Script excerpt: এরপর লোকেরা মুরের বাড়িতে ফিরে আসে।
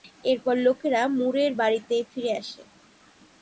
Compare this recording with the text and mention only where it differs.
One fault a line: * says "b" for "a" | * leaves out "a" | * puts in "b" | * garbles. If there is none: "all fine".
all fine